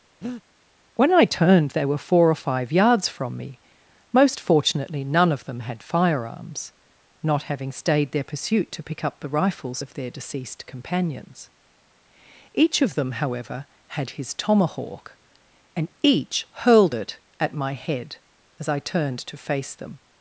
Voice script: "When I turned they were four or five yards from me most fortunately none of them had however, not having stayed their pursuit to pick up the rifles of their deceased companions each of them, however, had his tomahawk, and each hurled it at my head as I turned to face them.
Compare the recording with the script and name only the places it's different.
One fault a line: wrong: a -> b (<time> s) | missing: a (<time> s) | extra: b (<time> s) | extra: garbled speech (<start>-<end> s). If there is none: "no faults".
wrong: however -> firearms (5.8 s)